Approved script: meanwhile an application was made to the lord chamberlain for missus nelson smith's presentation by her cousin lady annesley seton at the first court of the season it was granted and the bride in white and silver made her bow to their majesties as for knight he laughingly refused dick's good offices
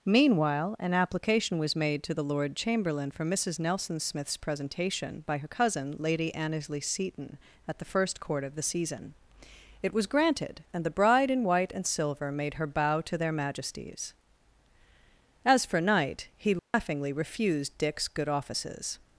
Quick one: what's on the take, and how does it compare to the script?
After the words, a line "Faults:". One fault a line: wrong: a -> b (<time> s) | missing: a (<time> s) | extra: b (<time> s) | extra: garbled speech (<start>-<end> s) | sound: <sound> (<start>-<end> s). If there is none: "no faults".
meanwhile an application was made to the lord chamberlain for missus nelson smith's presentation by her cousin lady annesley seton at the first court of the season it was granted and the bride in white and silver made her bow to their majesties as for knight he laughingly refused dick's good offices
Faults:
sound: dropout (16.6-16.7 s)